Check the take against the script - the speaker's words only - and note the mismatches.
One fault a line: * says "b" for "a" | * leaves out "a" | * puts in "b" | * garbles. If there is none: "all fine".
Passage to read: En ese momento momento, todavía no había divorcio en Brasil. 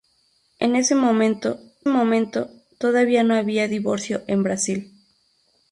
all fine